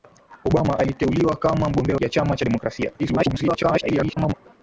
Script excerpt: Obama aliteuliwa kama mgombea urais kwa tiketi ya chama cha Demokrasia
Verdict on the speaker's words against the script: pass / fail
fail